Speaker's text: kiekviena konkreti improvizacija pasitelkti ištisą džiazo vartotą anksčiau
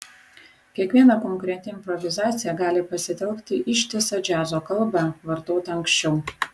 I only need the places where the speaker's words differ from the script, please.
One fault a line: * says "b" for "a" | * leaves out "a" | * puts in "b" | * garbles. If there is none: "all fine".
* puts in "gali"
* puts in "kalbą"